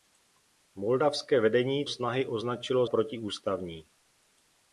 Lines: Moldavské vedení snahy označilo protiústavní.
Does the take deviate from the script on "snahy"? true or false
false